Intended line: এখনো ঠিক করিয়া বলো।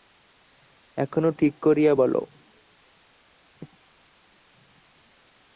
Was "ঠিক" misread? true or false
false